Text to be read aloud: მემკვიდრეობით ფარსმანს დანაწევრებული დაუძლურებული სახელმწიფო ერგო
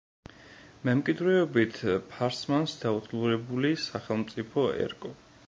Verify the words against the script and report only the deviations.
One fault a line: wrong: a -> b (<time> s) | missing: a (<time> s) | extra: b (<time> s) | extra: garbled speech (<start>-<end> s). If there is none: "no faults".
missing: დანაწევრებული (2.7 s)